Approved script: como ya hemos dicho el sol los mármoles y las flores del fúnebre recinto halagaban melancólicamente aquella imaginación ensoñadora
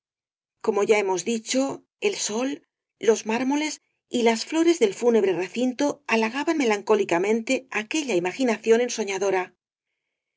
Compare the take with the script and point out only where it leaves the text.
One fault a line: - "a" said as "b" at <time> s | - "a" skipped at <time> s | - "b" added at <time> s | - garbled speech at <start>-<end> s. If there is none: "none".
none